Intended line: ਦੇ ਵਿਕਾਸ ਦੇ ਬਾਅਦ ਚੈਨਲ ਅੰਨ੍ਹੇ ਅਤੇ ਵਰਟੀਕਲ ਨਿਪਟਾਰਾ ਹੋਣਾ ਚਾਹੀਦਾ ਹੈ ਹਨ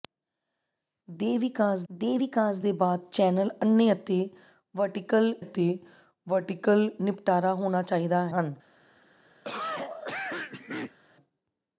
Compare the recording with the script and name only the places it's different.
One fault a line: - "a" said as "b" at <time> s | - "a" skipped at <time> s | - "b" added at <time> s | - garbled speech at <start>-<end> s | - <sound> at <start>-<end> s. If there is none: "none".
- "ਵਿਕਾਸ ਦੇ" added at 2.2 s
- "ਅਤੇ ਵਰਟੀਕਲ" added at 5.4 s
- "ਹੈ" skipped at 8.3 s
- cough at 9.4-11.0 s